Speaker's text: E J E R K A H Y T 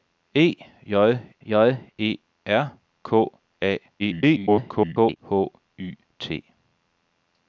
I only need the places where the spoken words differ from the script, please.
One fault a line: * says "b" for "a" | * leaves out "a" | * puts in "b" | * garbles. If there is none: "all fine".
* puts in "J"
* garbles